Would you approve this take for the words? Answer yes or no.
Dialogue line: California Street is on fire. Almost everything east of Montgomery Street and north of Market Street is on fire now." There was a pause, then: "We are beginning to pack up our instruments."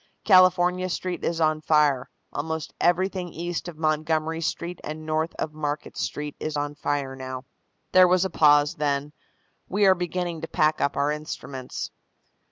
yes